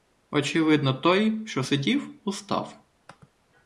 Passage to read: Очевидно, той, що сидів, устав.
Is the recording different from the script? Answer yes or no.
no